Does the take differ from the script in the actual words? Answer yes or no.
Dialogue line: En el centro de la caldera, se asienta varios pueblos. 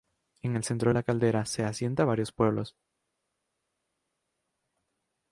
no